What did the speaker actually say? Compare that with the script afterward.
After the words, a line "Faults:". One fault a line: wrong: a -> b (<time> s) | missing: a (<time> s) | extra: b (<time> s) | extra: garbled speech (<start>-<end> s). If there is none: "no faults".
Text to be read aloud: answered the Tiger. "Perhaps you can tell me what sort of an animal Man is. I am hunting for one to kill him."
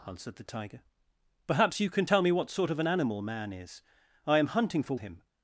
answered the Tiger. "Perhaps you can tell me what sort of an animal Man is. I am hunting for him."
Faults:
missing: one to kill (5.0 s)